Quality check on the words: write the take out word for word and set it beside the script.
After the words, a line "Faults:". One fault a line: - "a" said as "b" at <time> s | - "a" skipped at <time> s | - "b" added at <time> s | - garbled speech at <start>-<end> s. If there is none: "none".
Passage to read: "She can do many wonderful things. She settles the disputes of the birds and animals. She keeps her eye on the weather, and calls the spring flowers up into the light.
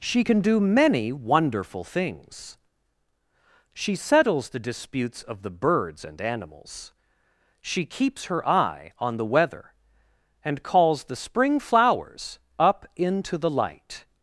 "She can do many wonderful things. She settles the disputes of the birds and animals. She keeps her eye on the weather, and calls the spring flowers up into the light.
Faults:
none